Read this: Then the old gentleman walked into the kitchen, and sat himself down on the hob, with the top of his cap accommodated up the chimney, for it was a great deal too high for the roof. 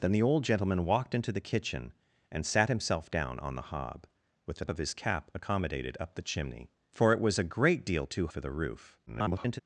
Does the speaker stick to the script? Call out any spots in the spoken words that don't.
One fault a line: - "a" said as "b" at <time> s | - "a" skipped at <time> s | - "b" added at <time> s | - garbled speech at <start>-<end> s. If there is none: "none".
- "top" skipped at 4.7 s
- "high" skipped at 8.3 s
- garbled speech at 9.1-9.6 s